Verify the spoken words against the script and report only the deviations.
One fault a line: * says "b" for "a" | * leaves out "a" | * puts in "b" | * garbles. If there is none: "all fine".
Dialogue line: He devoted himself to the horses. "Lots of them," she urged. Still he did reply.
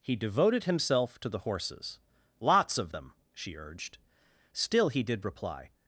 all fine